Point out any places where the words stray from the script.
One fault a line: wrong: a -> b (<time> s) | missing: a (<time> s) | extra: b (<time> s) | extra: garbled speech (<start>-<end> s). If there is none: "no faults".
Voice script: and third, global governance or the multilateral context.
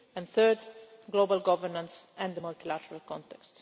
wrong: or -> and (2.2 s)